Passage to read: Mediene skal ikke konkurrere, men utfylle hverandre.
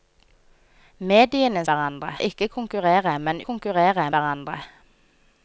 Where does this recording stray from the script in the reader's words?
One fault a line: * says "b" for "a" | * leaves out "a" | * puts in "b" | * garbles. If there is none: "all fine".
* says "hverandre" for "skal"
* says "konkurrere" for "utfylle"